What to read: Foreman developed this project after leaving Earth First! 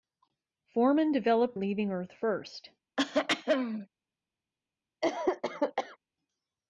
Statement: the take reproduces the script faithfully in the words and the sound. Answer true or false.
false